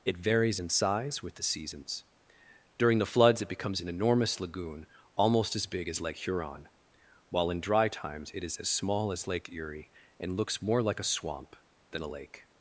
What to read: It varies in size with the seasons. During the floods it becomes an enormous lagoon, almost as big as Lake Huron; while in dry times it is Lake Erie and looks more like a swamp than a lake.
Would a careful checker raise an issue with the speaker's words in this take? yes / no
yes